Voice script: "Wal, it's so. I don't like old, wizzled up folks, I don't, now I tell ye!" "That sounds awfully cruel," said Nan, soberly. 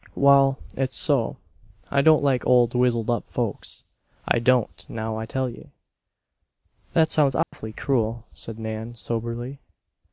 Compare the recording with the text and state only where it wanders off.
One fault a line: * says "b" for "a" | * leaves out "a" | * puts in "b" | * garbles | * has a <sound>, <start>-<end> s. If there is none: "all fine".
* has a dropout, 7.4-7.5 s